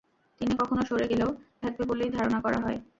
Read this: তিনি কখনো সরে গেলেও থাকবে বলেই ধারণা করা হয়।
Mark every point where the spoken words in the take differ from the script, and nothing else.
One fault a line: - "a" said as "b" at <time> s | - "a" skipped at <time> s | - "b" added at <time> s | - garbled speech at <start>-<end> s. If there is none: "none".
none